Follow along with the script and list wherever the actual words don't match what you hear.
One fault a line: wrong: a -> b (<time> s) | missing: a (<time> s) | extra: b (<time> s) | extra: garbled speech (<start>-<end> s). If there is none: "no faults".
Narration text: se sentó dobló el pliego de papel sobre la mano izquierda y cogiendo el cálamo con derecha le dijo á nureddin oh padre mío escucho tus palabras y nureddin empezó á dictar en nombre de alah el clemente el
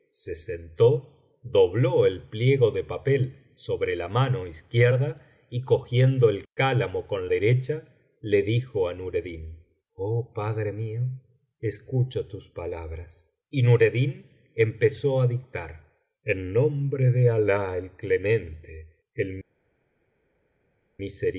no faults